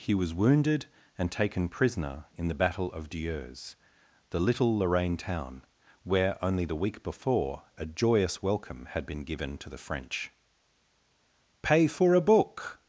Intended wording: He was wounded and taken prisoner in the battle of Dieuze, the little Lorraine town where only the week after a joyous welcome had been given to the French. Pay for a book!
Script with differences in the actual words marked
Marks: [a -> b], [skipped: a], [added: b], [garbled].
He was wounded and taken prisoner in the battle of Dieuze, the little Lorraine town where only the week [after -> before] a joyous welcome had been given to the French. Pay for a book!